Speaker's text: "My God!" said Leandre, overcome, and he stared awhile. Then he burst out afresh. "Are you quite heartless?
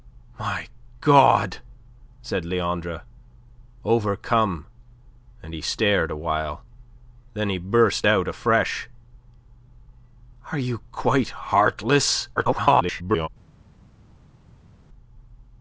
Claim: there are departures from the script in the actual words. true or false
true